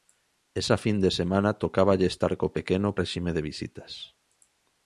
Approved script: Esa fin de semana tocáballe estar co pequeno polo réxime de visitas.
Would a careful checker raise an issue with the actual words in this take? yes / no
yes